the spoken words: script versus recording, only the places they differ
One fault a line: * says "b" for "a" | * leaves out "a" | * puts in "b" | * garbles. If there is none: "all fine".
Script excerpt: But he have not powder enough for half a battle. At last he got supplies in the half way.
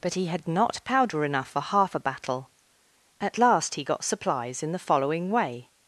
* says "had" for "have"
* says "following" for "half"